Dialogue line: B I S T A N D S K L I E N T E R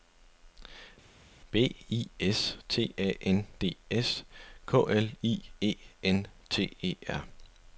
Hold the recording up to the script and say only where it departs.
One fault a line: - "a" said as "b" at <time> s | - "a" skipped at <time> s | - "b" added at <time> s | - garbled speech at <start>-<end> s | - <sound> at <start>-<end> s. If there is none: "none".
none